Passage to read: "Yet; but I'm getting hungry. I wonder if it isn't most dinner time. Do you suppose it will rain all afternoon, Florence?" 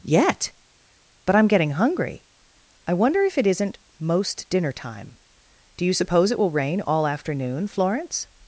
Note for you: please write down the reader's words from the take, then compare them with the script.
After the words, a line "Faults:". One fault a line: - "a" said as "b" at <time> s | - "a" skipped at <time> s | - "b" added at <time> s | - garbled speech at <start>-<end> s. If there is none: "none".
"Yet; but I'm getting hungry. I wonder if it isn't most dinner time. Do you suppose it will rain all afternoon, Florence?"
Faults:
none